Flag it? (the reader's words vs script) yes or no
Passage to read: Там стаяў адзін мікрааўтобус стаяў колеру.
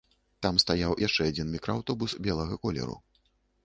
yes